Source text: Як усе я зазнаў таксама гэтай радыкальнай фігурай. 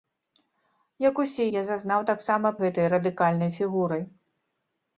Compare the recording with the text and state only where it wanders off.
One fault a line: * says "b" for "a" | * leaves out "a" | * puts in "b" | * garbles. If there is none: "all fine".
all fine